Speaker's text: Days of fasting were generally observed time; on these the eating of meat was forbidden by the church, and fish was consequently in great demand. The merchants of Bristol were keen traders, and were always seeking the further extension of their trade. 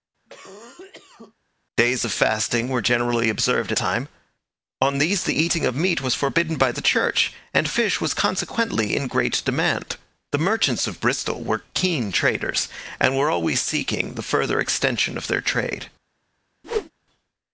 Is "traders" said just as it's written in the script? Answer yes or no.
yes